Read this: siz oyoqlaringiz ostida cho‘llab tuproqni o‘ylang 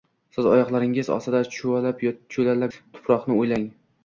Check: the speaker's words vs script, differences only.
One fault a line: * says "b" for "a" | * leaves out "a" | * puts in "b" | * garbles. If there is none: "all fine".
all fine